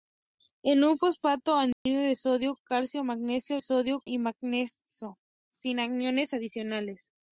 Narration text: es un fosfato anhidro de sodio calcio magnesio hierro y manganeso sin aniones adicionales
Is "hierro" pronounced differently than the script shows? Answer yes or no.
yes